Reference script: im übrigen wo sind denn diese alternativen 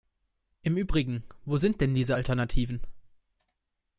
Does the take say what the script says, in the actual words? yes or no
yes